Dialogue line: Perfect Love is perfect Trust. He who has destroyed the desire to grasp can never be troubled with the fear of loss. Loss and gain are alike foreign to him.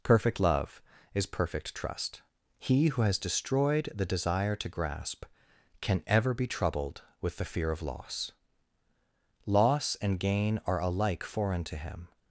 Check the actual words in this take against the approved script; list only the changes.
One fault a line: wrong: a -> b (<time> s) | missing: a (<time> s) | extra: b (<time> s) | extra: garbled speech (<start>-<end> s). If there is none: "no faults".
wrong: never -> ever (6.0 s)